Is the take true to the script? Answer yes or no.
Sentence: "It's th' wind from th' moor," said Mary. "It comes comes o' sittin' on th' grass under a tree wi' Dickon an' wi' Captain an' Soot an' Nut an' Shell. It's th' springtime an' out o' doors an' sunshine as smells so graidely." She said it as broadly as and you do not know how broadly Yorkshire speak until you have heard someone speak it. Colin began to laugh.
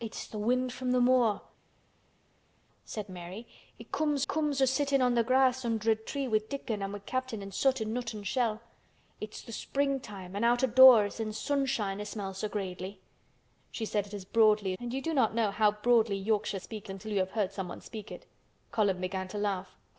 yes